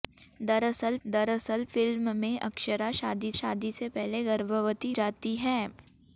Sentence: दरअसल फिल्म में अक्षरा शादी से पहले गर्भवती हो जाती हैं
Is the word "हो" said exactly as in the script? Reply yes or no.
no